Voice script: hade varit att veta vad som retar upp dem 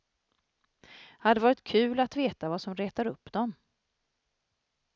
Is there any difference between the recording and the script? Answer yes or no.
yes